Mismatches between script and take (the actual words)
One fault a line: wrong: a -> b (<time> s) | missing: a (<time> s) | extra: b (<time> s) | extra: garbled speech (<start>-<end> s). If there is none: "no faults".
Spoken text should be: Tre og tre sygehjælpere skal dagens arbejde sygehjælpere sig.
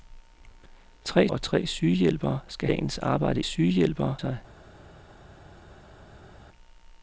no faults